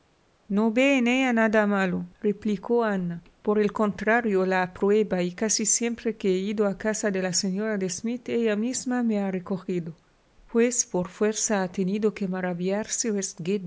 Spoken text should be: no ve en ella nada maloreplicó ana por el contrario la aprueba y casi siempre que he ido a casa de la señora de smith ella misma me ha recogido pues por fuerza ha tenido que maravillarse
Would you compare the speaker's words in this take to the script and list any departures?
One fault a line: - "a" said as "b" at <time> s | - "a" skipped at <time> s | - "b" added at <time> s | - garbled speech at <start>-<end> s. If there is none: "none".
none